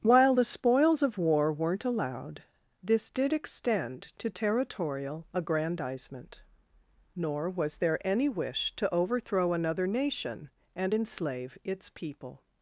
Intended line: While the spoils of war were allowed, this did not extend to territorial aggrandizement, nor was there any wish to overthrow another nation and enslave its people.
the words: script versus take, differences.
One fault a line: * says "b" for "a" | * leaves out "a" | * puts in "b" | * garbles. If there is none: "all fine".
* says "weren't" for "were"
* leaves out "not"